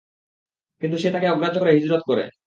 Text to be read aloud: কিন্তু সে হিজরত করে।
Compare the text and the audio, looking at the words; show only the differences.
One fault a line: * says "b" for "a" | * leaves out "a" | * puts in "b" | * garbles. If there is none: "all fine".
* puts in "তাকে অগ্রাহ্য করে"